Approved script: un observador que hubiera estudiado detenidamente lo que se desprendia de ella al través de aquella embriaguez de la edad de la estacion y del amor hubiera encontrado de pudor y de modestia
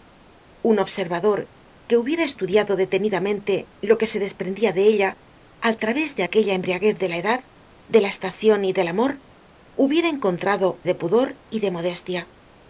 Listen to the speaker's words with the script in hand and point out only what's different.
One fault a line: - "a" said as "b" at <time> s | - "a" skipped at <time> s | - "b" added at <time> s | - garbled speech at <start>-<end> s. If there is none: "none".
none